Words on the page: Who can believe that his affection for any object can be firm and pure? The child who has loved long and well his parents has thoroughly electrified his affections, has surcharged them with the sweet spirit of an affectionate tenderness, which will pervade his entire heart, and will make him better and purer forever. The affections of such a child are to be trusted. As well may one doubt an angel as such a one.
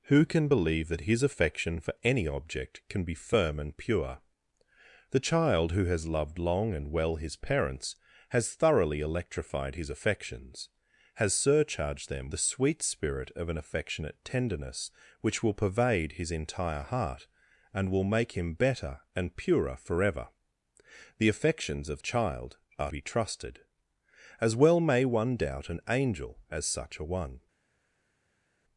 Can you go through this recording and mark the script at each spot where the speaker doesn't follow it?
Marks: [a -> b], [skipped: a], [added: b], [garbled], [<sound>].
Who can believe that his affection for any object can be firm and pure? The child who has loved long and well his parents has thoroughly electrified his affections, has surcharged them [skipped: with] the sweet spirit of an affectionate tenderness, which will pervade his entire heart, and will make him better and purer forever. The affections of [skipped: such] a child are [skipped: to] be trusted. As well may one doubt an angel as such a one.